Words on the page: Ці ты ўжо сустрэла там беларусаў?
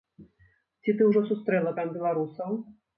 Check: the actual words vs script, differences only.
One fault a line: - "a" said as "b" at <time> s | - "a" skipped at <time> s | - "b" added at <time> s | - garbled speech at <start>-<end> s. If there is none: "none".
none